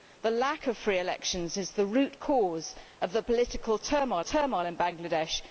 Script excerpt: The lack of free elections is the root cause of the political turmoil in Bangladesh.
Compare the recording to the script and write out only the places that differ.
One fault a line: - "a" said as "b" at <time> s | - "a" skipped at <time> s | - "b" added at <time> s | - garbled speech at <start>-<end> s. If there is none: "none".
- "turmoil" added at 4.2 s